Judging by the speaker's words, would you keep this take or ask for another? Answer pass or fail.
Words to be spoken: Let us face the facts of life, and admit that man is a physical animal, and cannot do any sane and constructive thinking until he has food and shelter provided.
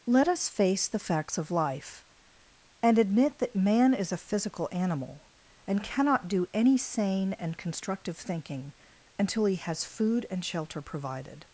pass